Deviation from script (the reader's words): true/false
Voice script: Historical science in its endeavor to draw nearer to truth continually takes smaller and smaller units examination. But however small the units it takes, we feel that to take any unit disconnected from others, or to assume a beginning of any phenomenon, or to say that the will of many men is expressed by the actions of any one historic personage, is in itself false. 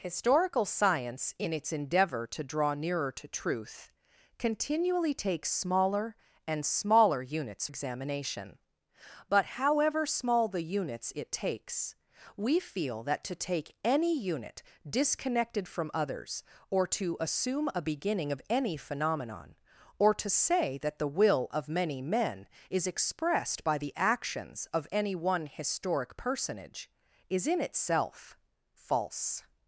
false